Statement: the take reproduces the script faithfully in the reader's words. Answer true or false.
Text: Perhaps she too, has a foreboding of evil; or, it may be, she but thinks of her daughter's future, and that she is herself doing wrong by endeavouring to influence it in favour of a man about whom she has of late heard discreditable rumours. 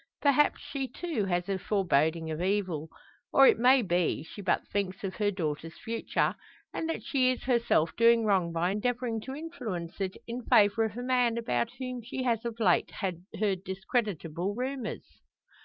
true